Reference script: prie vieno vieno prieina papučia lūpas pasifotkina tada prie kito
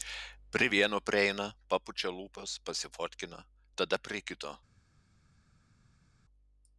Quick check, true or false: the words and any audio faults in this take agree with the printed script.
false